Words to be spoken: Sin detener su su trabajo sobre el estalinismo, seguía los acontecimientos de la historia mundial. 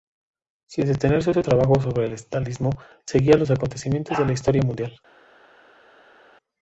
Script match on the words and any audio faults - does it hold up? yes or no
yes